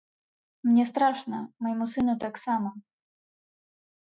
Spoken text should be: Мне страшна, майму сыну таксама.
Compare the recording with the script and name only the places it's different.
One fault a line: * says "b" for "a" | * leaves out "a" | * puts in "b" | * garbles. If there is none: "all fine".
all fine